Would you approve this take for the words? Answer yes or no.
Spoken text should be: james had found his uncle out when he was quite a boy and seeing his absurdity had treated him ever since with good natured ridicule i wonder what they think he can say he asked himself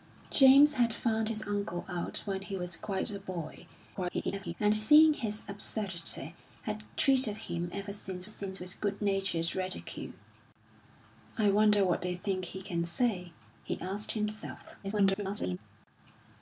no